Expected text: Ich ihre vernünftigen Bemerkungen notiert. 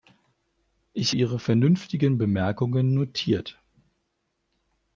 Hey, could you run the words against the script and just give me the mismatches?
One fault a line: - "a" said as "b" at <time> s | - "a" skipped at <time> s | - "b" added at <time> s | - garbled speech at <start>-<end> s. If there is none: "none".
none